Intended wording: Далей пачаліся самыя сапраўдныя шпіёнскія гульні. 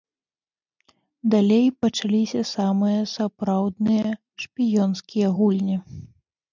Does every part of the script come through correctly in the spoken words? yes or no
yes